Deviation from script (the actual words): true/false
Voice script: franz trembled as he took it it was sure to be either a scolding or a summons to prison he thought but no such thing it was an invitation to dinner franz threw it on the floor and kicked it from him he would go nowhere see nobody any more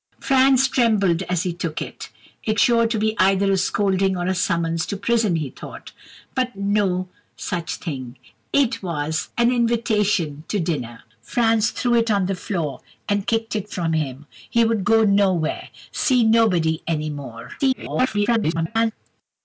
true